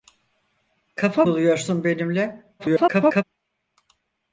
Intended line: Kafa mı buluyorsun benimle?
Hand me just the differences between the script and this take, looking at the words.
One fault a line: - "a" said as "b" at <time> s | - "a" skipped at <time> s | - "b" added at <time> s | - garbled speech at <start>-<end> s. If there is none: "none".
- "mı" skipped at 1.2 s
- garbled speech at 2.6-3.2 s